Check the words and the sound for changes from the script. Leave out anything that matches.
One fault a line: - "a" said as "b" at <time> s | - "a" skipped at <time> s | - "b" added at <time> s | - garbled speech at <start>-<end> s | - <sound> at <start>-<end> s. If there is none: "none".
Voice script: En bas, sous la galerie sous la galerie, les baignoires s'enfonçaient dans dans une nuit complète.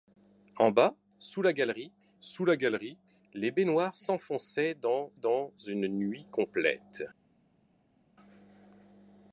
none